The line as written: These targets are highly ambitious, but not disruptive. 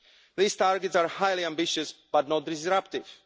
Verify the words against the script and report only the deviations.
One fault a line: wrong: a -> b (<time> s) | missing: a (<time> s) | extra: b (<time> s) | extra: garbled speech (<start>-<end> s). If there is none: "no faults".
no faults